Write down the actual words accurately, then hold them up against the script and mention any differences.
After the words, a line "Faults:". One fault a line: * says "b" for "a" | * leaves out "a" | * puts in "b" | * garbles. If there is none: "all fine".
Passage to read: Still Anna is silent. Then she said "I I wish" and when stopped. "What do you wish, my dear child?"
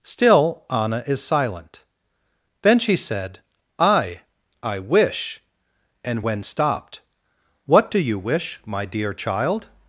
Still Anna is silent. Then she said "I I wish" and when stopped. "What do you wish, my dear child?"
Faults:
all fine